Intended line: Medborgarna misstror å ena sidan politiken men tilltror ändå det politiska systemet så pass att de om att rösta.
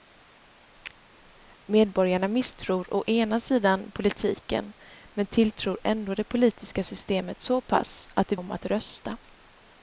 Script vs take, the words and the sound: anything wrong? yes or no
no